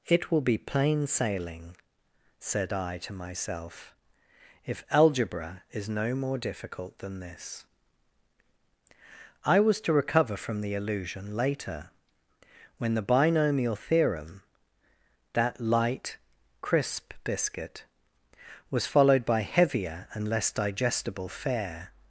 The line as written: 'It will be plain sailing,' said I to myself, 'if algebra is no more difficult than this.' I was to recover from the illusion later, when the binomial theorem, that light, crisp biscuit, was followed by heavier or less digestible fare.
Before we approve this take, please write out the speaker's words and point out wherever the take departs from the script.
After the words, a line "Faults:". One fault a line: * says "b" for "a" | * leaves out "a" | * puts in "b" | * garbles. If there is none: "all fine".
'It will be plain sailing,' said I to myself, 'if algebra is no more difficult than this.' I was to recover from the illusion later, when the binomial theorem, that light, crisp biscuit, was followed by heavier and less digestible fare.
Faults:
* says "and" for "or"